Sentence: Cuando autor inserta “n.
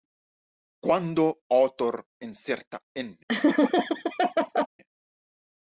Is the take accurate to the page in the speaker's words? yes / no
yes